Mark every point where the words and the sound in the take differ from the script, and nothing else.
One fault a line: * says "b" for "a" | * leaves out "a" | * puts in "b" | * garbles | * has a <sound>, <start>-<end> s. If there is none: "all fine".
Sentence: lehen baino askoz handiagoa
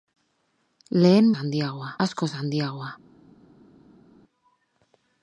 * says "handiagoa" for "baino"